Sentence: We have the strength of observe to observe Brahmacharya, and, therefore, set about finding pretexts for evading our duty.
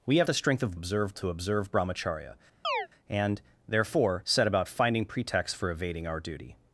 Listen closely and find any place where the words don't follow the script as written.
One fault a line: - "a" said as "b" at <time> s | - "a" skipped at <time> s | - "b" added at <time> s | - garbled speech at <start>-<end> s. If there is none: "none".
none